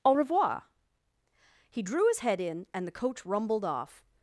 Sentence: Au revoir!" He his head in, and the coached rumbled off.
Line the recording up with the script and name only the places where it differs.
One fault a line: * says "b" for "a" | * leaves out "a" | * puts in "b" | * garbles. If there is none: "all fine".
* puts in "drew"
* says "coach" for "coached"